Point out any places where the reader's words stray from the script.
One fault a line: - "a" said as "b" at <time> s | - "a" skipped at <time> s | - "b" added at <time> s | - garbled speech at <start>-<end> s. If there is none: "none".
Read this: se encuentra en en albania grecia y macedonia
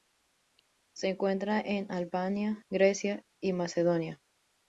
- "en" skipped at 1.9 s